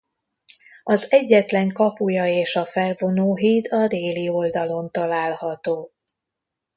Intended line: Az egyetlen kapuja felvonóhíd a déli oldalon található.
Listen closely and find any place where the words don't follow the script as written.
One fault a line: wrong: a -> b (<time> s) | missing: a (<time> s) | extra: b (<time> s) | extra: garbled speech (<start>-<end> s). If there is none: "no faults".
extra: és a (2.3 s)